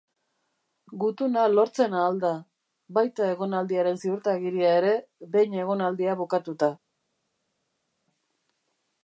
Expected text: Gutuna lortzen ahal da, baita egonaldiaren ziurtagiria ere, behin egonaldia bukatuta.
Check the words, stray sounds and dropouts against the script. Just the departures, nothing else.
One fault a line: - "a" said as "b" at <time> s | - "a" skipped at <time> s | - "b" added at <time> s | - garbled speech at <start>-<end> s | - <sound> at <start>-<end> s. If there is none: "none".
none